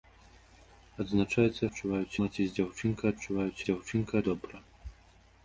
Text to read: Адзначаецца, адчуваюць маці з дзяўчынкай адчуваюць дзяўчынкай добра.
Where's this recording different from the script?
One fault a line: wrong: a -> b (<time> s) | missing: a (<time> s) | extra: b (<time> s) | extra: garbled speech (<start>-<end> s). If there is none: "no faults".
no faults